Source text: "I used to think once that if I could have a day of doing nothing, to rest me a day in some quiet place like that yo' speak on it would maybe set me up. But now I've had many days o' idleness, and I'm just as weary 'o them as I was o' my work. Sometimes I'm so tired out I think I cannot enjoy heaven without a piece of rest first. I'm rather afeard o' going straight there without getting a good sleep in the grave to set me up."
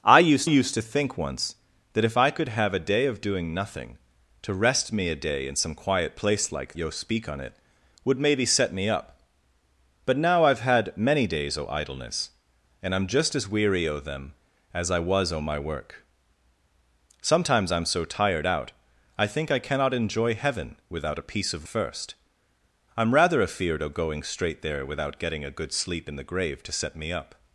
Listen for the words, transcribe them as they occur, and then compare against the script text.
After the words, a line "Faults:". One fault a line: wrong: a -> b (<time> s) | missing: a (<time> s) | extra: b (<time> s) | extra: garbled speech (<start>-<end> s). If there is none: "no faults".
"I used used to think once that if I could have a day of doing nothing, to rest me a day in some quiet place like yo' speak on it would maybe set me up. But now I've had many days o' idleness, and I'm just as weary 'o them as I was o' my work. Sometimes I'm so tired out I think I cannot enjoy heaven without a piece of first. I'm rather afeard o' going straight there without getting a good sleep in the grave to set me up."
Faults:
extra: used (0.4 s)
missing: that (6.8 s)
missing: rest (21.7 s)